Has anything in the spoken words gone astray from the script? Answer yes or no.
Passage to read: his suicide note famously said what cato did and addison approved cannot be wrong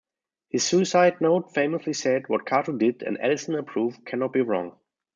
no